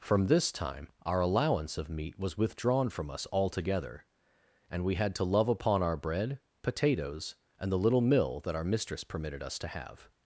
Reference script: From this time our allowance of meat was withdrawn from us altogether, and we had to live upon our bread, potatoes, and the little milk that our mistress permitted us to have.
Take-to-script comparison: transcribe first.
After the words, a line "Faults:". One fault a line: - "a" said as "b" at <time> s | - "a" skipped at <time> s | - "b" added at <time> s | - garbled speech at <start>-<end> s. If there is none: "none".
From this time our allowance of meat was withdrawn from us altogether, and we had to love upon our bread, potatoes, and the little mill that our mistress permitted us to have.
Faults:
- "live" said as "love" at 5.2 s
- "milk" said as "mill" at 8.0 s